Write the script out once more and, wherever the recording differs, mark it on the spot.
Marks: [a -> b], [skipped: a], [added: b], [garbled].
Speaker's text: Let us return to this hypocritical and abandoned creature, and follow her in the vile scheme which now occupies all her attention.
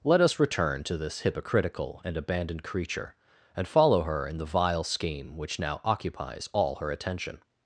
Let us return to this hypocritical and abandoned creature, and follow her in the vile scheme which now occupies all her attention.